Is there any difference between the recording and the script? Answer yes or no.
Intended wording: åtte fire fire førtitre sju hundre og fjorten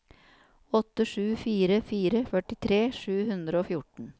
yes